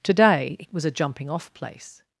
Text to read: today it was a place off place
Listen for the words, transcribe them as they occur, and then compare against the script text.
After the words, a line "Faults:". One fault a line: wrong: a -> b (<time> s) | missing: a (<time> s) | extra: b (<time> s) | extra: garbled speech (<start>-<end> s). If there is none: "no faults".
today it was a jumping off place
Faults:
wrong: place -> jumping (0.9 s)